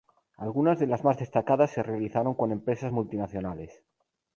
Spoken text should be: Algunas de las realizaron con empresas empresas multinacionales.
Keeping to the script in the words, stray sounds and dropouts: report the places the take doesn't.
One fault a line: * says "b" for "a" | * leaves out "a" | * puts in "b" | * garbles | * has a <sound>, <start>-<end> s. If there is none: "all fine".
* puts in "más destacadas se"
* leaves out "empresas"